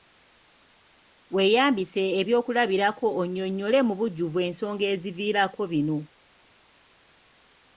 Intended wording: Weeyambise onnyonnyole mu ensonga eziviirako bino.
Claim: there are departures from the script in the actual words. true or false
true